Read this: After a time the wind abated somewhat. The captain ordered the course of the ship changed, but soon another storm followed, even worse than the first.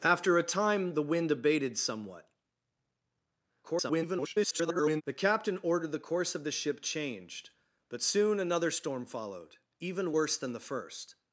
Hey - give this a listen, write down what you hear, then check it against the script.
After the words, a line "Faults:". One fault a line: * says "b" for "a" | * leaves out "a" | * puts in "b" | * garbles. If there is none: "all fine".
After a time the wind abated somewhat. [garbled] The captain ordered the course of the ship changed, but soon another storm followed, even worse than the first.
Faults:
* garbles